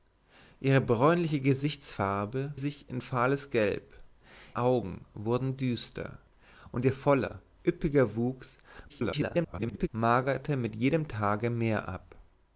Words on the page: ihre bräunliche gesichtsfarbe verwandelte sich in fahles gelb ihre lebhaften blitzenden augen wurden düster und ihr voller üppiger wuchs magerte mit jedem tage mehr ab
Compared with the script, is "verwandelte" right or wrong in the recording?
wrong